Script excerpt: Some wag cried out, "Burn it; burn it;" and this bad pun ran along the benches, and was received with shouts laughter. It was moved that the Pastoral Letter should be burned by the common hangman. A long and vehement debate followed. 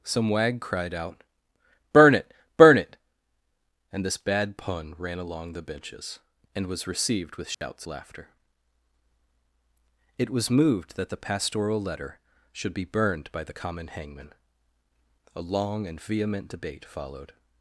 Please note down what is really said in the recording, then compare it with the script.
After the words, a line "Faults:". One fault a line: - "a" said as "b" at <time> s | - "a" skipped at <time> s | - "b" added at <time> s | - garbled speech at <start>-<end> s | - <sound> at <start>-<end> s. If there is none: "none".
Some wag cried out, "Burn it; burn it;" and this bad pun ran along the benches, and was received with shouts laughter. It was moved that the Pastoral Letter should be burned by the common hangman. A long and vehement debate followed.
Faults:
- dropout at 7.5-7.6 s